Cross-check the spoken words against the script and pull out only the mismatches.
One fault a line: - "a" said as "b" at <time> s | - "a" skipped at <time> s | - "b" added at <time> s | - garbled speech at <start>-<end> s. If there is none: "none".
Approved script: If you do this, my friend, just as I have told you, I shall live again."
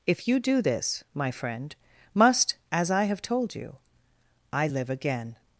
- "just" said as "must" at 2.1 s
- "shall" skipped at 4.7 s